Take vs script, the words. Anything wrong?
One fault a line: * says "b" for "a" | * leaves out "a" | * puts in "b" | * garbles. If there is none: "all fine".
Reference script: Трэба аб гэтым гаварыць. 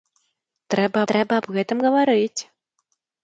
* puts in "трэба"